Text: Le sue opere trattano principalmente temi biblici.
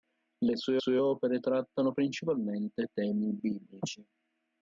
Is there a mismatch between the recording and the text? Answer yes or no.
yes